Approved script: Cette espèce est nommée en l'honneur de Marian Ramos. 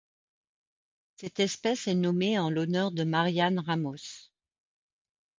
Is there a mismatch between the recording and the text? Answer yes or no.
no